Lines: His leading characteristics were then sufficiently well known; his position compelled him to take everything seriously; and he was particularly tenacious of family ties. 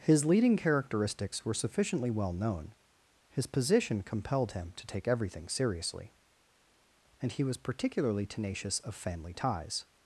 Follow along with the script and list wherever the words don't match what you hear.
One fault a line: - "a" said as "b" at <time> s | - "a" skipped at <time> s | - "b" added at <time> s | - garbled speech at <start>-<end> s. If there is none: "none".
- "then" skipped at 1.5 s